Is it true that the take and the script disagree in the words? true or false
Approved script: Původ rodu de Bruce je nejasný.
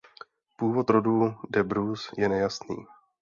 false